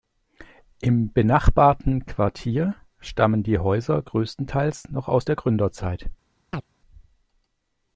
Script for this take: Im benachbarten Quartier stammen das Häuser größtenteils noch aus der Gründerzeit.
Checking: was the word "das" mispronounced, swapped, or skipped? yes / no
yes